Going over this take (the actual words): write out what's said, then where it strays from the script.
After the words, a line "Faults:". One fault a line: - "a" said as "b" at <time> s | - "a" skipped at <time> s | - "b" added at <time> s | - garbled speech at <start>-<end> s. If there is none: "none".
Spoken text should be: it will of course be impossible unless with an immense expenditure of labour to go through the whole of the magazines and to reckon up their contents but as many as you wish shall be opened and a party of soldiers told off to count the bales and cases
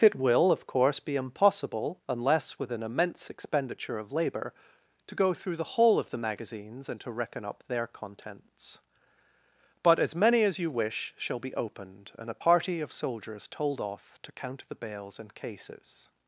it will of course be impossible unless with an immense expenditure of labour to go through the whole of the magazines and to reckon up their contents but as many as you wish shall be opened and a party of soldiers told off to count the bales and cases
Faults:
none